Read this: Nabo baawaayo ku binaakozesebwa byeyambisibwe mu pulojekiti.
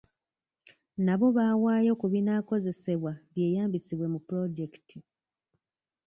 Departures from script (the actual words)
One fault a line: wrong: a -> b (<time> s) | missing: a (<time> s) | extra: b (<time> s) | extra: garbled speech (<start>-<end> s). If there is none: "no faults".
no faults